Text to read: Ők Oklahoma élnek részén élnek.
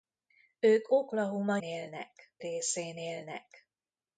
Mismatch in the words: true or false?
false